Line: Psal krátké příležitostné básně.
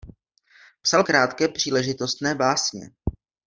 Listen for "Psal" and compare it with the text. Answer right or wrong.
right